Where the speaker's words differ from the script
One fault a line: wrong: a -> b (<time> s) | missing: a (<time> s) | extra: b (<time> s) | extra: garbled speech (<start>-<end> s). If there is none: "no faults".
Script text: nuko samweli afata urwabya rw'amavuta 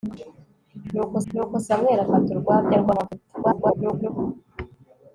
extra: nuko (1.3 s)
extra: garbled speech (3.4-4.1 s)